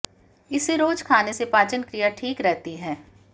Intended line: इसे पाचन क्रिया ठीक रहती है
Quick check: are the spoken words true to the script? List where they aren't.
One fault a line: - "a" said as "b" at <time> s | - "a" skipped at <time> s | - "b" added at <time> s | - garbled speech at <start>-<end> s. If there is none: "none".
- "रोज खाने से" added at 0.8 s